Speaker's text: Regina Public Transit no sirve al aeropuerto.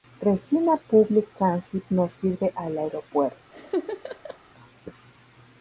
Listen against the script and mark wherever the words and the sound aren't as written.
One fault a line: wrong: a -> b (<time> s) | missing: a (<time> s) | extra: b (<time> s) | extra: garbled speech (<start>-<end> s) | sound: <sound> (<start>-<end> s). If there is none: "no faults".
sound: laugh (3.5-4.4 s)